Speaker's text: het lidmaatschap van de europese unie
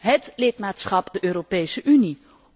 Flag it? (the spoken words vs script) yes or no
yes